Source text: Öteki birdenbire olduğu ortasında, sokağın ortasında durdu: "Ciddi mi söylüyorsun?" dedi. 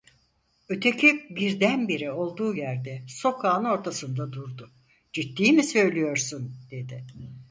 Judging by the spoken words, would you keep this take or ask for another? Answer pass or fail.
fail